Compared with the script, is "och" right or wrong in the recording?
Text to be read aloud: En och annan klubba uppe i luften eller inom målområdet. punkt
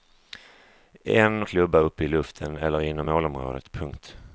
wrong